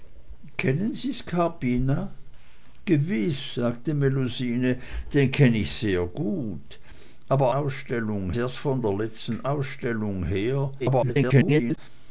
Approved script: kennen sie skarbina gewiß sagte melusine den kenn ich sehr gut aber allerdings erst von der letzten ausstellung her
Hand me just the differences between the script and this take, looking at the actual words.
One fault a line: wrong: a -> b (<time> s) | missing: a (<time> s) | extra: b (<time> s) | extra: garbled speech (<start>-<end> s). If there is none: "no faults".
wrong: allerdings -> ausstellung (7.5 s)
extra: garbled speech (10.8-11.8 s)